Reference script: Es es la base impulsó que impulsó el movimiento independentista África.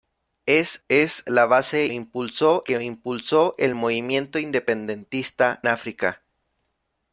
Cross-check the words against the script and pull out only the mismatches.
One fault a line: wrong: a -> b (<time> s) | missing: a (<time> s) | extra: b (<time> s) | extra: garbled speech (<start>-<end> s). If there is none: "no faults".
no faults